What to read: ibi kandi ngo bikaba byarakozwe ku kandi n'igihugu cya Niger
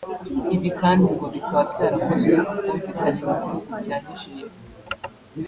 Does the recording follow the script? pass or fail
fail